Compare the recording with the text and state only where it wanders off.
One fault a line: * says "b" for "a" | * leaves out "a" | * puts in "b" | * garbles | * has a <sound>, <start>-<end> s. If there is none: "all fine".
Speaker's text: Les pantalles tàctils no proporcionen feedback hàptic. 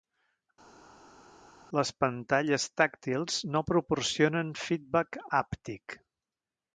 all fine